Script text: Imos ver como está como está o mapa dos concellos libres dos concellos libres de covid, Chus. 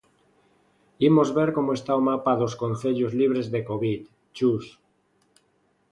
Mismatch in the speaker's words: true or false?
true